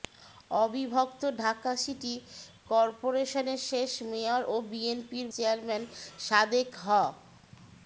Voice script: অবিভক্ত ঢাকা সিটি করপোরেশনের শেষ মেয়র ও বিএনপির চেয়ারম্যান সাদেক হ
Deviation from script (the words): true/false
false